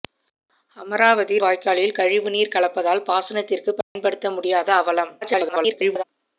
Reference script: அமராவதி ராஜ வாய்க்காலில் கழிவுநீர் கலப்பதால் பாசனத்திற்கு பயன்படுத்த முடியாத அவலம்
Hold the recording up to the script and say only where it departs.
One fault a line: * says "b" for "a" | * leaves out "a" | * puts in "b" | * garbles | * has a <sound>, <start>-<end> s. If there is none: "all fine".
* leaves out "ராஜ"
* has a dropout, 3.8-4.0 s
* garbles